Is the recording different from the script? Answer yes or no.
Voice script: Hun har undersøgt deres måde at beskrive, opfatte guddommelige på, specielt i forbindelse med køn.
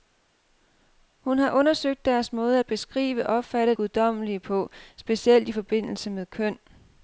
no